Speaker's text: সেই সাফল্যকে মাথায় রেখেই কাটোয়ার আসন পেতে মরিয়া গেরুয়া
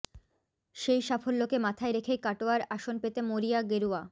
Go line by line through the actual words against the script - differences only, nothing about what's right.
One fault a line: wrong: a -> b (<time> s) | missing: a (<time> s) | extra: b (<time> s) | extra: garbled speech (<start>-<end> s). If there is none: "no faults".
no faults